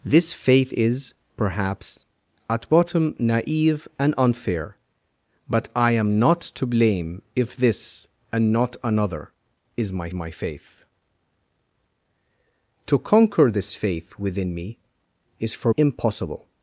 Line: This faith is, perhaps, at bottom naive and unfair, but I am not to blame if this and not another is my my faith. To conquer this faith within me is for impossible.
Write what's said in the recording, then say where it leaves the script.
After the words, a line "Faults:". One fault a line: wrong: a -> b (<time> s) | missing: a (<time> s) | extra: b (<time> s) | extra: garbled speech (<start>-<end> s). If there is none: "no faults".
This faith is, perhaps, at bottom naive and unfair, but I am not to blame if this and not another is my my faith. To conquer this faith within me is for impossible.
Faults:
no faults